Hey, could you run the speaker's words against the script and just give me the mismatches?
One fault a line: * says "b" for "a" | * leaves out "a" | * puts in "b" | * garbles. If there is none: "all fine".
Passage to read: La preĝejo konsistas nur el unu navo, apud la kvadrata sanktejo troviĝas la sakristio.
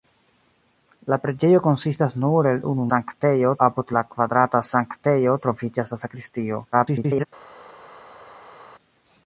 * says "sanktejo" for "navo"
* garbles